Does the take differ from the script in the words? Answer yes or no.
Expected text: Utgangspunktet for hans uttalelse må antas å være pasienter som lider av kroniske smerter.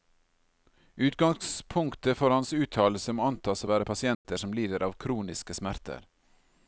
no